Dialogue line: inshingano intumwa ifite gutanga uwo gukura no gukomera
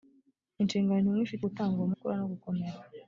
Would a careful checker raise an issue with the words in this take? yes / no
no